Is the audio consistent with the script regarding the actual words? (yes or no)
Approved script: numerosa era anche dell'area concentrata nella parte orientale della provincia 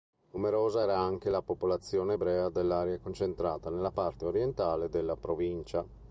no